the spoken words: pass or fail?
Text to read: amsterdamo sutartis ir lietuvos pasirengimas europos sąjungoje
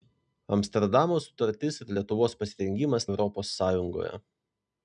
pass